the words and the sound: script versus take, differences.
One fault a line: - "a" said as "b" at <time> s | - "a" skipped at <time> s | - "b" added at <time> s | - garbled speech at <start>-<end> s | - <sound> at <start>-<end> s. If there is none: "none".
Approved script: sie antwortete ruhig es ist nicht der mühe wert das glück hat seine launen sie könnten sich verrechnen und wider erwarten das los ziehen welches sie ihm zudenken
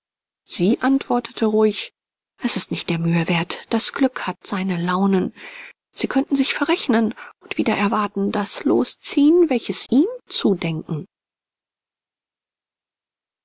- "sie" skipped at 9.8 s